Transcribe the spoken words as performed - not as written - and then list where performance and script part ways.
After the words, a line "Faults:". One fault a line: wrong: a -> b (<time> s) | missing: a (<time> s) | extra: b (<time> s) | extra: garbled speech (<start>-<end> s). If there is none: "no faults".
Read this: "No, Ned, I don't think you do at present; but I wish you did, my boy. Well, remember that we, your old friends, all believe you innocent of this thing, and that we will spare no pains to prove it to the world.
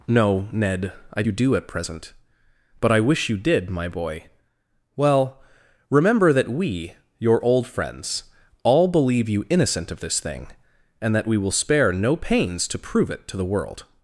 "No, Ned, I you do at present; but I wish you did, my boy. Well, remember that we, your old friends, all believe you innocent of this thing, and that we will spare no pains to prove it to the world.
Faults:
missing: don't think (1.2 s)